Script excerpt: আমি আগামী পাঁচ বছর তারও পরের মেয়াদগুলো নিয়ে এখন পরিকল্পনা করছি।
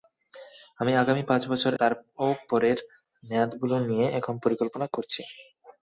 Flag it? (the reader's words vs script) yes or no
no